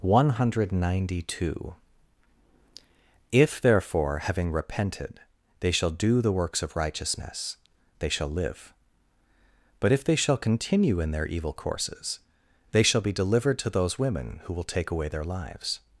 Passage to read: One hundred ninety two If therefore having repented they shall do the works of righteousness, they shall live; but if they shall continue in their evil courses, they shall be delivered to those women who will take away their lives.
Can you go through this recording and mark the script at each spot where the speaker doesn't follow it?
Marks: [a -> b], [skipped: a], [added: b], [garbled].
One hundred ninety two If therefore having repented they shall do the works of righteousness, they shall live; but if they shall continue in their evil courses, they shall be delivered to those women who will take away their lives.